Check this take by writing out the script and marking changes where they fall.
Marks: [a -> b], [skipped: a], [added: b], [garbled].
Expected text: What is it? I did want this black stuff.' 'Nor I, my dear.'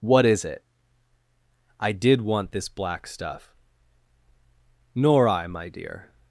What is it? I did want this black stuff.' 'Nor I, my dear.'